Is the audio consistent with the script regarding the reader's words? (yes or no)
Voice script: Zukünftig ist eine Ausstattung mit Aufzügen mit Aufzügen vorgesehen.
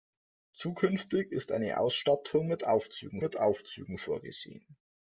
yes